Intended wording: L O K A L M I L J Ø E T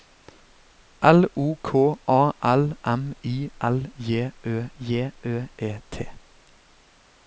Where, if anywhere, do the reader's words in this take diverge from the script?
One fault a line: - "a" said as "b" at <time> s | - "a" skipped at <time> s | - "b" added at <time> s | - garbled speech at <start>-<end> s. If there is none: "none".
- "J Ø" added at 4.8 s